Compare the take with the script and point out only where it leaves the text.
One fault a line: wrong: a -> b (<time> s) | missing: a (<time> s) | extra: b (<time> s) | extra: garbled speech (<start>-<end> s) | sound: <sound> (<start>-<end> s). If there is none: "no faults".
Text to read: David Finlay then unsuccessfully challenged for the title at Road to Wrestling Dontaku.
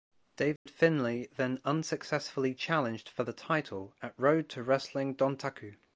sound: dropout (0.6-0.7 s)